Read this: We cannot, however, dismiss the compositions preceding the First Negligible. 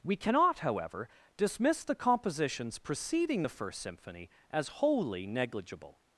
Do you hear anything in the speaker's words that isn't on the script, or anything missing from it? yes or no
yes